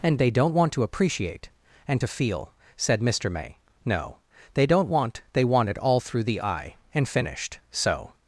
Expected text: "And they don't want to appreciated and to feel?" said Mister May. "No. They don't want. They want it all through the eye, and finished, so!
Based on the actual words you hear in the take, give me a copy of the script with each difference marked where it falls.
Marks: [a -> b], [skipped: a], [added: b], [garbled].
"And they don't want to [appreciated -> appreciate] and to feel?" said Mister May. "No. They don't want. They want it all through the eye, and finished, so!